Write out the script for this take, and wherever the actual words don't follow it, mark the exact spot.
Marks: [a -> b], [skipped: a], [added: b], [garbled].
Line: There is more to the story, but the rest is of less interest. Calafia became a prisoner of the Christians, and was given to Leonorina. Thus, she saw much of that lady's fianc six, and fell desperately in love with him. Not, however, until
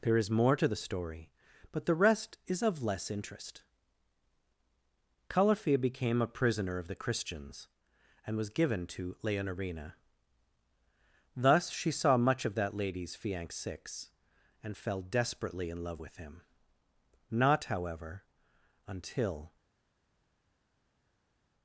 There is more to the story, but the rest is of less interest. Calafia became a prisoner of the Christians, and was given to Leonorina. Thus, she saw much of that lady's fianc six, and fell desperately in love with him. Not, however, until